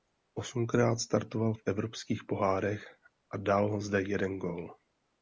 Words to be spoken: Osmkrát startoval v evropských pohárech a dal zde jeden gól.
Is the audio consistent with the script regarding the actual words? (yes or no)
yes